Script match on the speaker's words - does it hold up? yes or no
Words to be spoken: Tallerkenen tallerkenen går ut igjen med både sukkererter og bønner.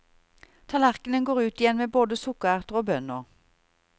no